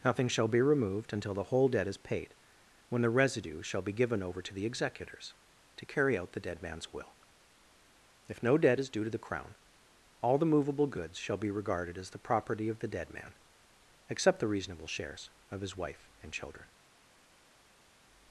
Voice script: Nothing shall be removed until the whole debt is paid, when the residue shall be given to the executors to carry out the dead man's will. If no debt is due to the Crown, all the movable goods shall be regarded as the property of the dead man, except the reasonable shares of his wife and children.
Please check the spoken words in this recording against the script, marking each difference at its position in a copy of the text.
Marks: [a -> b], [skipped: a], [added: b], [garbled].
Nothing shall be removed until the whole debt is paid, when the residue shall be given [added: over] to the executors to carry out the dead man's will. If no debt is due to the Crown, all the movable goods shall be regarded as the property of the dead man, except the reasonable shares of his wife and children.